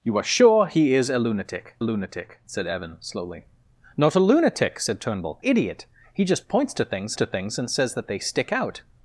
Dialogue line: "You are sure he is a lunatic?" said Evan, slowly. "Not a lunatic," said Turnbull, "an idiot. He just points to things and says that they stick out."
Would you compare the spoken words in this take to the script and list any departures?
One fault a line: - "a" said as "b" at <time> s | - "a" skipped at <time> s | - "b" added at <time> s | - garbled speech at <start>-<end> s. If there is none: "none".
- "lunatic" added at 1.8 s
- "an" skipped at 5.4 s
- "to things" added at 7.2 s